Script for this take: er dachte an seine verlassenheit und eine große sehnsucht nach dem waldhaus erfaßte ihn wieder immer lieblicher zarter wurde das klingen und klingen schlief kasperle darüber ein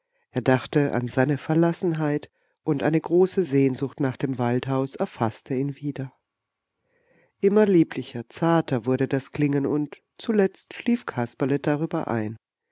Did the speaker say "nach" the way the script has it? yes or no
yes